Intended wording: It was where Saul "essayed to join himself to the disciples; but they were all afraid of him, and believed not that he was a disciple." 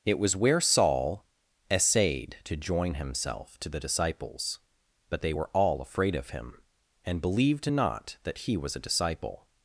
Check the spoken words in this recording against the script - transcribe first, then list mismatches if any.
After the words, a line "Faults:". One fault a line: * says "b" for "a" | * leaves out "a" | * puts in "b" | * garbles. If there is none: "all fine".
It was where Saul "essayed to join himself to the disciples; but they were all afraid of him, and believed not that he was a disciple."
Faults:
all fine